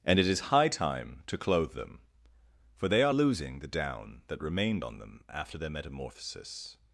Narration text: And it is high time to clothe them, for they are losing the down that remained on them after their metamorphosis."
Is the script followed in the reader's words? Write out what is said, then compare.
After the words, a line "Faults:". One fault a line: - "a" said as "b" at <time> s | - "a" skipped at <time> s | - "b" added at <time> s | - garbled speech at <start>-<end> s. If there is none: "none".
And it is high time to clothe them, for they are losing the down that remained on them after their metamorphosis."
Faults:
none